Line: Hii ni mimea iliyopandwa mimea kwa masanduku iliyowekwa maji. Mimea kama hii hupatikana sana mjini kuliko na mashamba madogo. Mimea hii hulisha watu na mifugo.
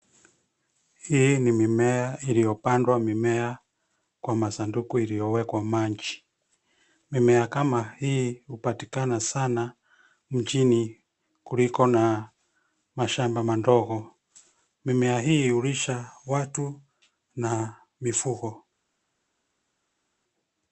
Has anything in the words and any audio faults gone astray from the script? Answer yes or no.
no